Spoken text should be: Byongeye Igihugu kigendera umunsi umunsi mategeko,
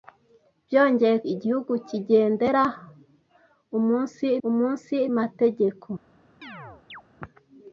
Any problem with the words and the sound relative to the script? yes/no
yes